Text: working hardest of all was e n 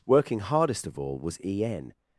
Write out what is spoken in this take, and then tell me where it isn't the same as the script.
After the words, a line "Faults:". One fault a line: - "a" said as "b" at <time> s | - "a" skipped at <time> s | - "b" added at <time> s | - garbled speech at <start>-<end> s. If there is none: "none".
working hardest of all was e n
Faults:
none